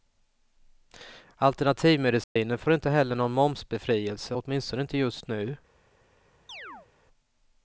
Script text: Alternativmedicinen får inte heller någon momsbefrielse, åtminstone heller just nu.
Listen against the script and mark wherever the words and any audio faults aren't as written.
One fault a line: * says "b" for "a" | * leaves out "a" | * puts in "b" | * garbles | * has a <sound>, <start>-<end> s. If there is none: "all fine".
* has a dropout, 2.2-2.4 s
* says "inte" for "heller"
* has a chirp, 6.5-6.9 s